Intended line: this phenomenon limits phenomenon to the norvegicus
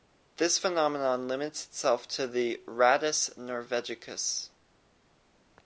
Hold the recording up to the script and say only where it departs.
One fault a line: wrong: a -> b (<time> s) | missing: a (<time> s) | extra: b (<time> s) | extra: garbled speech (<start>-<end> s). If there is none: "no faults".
wrong: phenomenon -> itself (1.6 s)
extra: rattus (2.6 s)